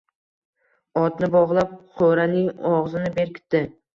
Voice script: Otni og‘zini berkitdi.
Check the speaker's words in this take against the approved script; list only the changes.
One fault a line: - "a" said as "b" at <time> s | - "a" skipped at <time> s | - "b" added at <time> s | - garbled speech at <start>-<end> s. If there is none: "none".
- "bog‘lab qo‘raning" added at 1.4 s